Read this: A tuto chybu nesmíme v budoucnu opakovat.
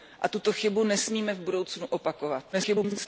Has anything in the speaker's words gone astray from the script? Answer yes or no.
yes